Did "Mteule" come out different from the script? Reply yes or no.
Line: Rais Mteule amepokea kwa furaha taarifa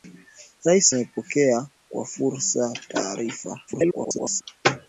yes